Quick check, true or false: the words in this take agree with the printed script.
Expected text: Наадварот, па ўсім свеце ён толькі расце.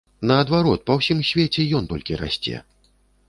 true